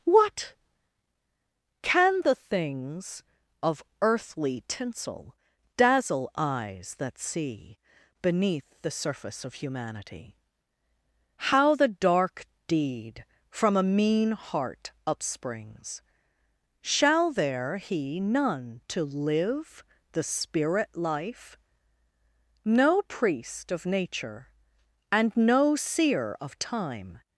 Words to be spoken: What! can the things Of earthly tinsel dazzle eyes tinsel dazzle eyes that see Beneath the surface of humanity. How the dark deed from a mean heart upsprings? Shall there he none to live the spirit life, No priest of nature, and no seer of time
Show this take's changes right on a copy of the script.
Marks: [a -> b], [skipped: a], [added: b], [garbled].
What! can the things Of earthly tinsel dazzle eyes [skipped: tinsel dazzle eyes] that see Beneath the surface of humanity. How the dark deed from a mean heart upsprings? Shall there he none to live the spirit life, No priest of nature, and no seer of time